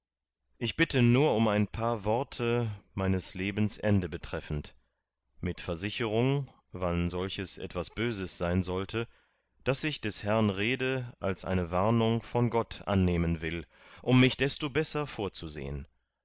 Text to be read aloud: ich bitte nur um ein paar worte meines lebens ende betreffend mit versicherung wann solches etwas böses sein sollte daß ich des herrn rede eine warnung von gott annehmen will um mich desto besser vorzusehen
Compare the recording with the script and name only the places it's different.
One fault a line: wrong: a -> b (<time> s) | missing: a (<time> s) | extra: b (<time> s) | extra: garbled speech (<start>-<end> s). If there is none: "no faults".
extra: als (11.2 s)